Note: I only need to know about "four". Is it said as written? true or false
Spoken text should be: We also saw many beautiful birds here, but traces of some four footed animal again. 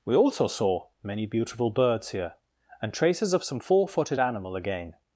true